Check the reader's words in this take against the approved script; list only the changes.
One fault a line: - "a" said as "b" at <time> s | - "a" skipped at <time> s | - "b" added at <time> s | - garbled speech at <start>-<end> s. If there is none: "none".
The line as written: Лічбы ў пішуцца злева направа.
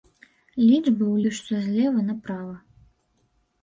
none